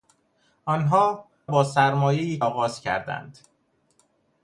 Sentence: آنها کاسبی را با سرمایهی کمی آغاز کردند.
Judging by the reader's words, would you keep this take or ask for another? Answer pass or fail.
fail